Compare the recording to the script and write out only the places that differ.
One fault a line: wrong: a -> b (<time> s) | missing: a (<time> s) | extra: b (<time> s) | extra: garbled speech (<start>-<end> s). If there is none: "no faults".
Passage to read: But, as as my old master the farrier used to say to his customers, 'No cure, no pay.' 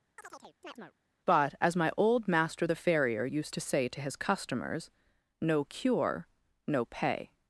missing: as (1.8 s)